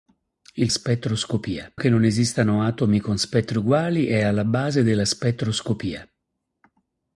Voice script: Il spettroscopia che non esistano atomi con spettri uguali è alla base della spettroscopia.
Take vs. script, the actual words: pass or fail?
pass